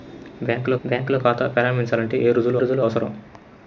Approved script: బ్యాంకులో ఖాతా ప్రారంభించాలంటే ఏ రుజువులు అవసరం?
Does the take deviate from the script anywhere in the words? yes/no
yes